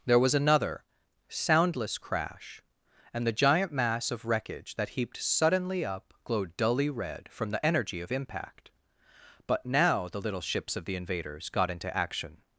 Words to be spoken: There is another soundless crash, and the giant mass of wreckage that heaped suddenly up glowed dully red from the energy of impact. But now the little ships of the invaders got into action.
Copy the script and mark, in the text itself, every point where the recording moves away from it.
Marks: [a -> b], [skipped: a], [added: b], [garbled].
There [is -> was] another soundless crash, and the giant mass of wreckage that heaped suddenly up glowed dully red from the energy of impact. But now the little ships of the invaders got into action.